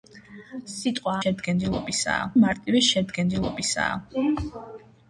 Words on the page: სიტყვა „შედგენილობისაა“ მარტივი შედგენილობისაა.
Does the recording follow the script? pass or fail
pass